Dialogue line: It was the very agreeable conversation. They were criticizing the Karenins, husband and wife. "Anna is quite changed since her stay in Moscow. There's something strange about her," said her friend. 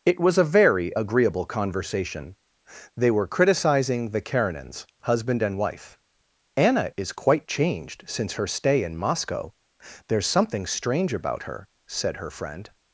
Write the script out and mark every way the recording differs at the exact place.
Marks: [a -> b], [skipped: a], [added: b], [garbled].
It was [the -> a] very agreeable conversation. They were criticizing the Karenins, husband and wife. "Anna is quite changed since her stay in Moscow. There's something strange about her," said her friend.